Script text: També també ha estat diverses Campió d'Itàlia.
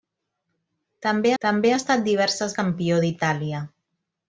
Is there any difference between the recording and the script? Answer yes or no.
no